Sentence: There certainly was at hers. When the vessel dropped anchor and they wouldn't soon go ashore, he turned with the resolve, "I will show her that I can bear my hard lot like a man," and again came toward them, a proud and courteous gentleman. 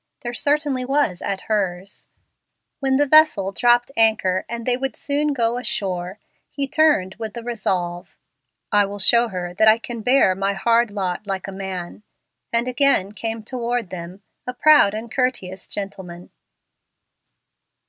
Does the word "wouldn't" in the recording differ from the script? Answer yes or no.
yes